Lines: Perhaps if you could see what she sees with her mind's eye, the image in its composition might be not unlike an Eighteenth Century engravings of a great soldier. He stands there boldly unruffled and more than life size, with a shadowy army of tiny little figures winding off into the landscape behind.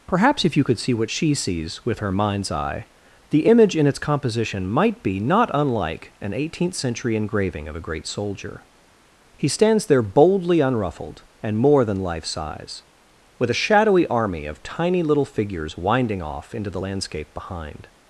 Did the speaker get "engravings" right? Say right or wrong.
wrong